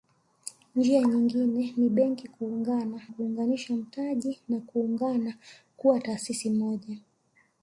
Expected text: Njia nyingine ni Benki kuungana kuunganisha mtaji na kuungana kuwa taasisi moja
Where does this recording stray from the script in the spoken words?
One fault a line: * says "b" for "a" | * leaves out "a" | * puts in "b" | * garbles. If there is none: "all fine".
all fine